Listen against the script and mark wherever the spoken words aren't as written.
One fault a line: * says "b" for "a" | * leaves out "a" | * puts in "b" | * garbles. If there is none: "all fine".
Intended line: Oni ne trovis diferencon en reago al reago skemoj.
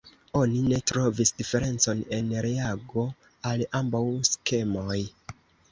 * says "ambaŭ" for "reago"